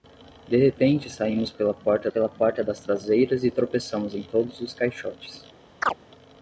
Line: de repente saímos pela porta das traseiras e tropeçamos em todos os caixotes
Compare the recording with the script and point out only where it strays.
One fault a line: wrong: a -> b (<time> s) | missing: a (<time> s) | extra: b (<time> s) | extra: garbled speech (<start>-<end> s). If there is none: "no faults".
extra: pela porta (2.1 s)